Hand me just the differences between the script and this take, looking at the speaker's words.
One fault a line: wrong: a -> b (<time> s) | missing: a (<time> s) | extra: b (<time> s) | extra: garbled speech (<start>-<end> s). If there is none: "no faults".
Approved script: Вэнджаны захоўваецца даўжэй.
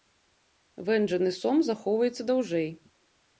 extra: сом (1.4 s)